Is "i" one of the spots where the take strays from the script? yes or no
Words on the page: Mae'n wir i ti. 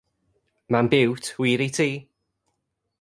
no